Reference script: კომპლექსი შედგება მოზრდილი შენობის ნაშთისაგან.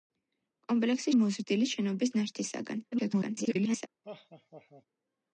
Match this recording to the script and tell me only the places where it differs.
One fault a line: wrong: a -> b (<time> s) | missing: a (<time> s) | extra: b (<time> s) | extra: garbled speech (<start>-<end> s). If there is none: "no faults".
missing: შედგება (1.1 s)
extra: garbled speech (2.9-3.9 s)